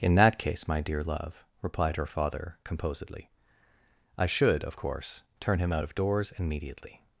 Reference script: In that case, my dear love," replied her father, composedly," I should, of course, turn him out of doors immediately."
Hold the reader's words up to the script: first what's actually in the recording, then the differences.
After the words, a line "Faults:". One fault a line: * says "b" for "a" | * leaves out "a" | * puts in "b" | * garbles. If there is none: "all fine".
In that case, my dear love," replied her father, composedly," I should, of course, turn him out of doors immediately."
Faults:
all fine